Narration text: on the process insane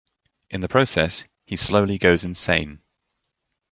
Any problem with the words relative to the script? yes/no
yes